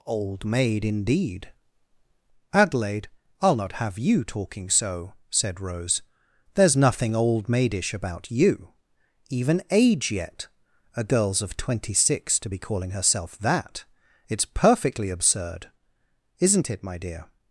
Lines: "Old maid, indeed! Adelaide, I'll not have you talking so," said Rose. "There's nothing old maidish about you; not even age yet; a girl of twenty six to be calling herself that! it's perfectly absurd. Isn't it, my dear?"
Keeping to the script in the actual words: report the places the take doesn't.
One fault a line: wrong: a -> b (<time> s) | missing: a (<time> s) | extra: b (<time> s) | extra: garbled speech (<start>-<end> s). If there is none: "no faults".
missing: not (8.7 s)
wrong: girl -> girls (11.0 s)